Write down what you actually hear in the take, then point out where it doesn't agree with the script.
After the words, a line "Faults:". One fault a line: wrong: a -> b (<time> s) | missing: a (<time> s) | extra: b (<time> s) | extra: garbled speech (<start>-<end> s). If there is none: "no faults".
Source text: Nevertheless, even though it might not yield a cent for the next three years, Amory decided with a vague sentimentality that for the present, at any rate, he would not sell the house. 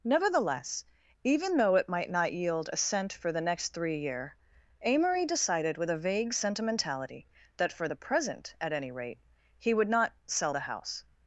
Nevertheless, even though it might not yield a cent for the next three year, Amory decided with a vague sentimentality that for the present, at any rate, he would not sell the house.
Faults:
wrong: years -> year (4.0 s)